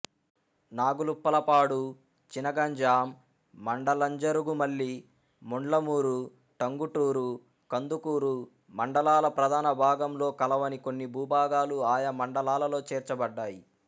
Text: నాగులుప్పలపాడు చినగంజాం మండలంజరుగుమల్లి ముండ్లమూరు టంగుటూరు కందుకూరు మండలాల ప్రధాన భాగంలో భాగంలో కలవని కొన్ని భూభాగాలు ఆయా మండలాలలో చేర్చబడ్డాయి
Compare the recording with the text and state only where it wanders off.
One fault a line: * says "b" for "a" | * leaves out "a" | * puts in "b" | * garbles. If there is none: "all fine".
* leaves out "భాగంలో"